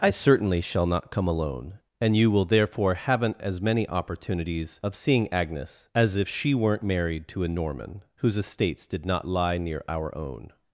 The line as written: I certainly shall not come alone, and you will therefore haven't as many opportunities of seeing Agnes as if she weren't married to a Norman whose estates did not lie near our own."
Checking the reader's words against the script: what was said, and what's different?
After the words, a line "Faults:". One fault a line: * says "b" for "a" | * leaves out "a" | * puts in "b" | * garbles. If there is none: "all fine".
I certainly shall not come alone, and you will therefore haven't as many opportunities of seeing Agnes as if she weren't married to a Norman whose estates did not lie near our own."
Faults:
all fine